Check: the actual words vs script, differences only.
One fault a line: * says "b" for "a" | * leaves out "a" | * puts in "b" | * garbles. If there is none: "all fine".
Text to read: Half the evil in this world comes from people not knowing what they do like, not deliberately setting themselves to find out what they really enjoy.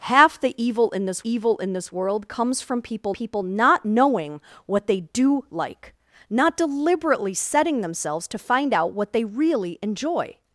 * puts in "evil in this"
* puts in "people"